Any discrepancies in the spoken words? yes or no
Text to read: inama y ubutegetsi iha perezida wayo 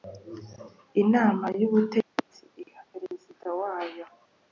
no